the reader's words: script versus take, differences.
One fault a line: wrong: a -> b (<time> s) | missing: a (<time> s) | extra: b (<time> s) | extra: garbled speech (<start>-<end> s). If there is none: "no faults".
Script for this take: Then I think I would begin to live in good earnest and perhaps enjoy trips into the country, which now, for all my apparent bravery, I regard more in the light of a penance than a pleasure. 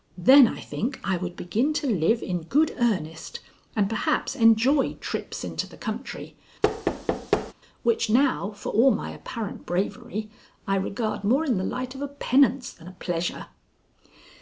no faults